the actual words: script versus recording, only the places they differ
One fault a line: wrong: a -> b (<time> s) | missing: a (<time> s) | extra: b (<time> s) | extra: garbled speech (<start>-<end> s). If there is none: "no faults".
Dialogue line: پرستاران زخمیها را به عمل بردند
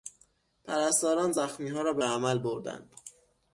no faults